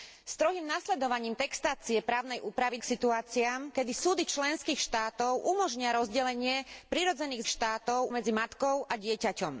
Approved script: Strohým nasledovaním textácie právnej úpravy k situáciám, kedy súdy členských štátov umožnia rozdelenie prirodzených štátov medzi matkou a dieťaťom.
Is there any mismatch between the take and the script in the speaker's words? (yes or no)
no